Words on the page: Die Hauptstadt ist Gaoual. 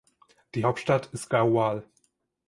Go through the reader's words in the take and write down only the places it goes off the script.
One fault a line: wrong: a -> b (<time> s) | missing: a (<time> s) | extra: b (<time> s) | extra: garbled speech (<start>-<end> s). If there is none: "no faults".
no faults